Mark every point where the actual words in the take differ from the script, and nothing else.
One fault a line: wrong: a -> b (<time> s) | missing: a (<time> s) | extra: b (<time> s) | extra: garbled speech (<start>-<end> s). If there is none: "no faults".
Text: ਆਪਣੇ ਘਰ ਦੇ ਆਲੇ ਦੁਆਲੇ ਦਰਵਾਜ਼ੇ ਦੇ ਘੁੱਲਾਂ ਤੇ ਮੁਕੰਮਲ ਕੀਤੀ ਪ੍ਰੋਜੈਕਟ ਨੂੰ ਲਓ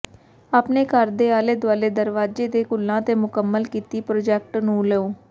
no faults